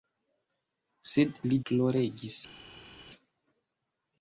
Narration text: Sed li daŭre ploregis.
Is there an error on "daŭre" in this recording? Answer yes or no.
yes